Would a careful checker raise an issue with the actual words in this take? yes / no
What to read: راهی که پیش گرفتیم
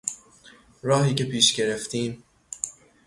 no